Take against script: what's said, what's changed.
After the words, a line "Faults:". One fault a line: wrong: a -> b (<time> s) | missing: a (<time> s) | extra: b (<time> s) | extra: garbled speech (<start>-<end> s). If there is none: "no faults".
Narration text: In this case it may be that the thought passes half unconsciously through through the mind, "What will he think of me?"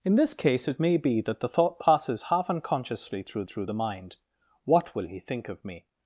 In this case it may be that the thought passes half unconsciously through through the mind, "What will he think of me?"
Faults:
no faults